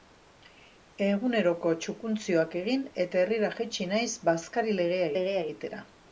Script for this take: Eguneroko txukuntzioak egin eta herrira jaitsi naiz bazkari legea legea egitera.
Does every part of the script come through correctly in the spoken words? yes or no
yes